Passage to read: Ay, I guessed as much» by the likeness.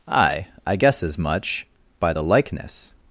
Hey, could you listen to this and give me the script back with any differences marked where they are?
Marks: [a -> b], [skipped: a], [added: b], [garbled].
Ay, I [guessed -> guess] as much» by the likeness.